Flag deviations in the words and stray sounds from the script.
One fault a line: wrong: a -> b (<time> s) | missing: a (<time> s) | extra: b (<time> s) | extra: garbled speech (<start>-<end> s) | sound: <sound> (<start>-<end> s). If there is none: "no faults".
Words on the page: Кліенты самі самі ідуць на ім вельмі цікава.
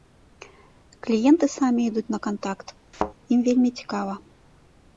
missing: самі (1.8 s)
extra: кантакт (2.3 s)
sound: thud (2.9-3.1 s)